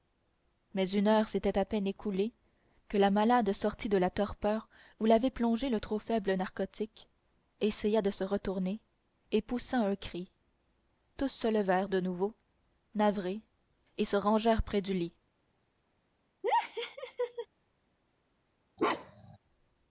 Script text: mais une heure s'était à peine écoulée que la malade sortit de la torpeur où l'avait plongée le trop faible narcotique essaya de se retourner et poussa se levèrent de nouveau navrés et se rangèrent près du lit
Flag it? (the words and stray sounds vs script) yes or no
yes